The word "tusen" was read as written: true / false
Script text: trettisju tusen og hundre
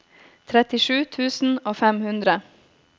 true